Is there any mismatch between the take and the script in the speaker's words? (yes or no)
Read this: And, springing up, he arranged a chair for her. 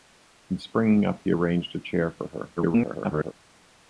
yes